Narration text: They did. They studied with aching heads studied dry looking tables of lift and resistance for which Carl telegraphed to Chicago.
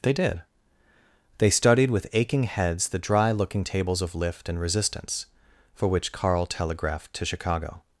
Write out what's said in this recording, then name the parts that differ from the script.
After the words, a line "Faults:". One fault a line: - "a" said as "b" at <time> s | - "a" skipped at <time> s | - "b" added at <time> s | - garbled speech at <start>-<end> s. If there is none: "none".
They did. They studied with aching heads the dry looking tables of lift and resistance for which Carl telegraphed to Chicago.
Faults:
- "studied" said as "the" at 2.9 s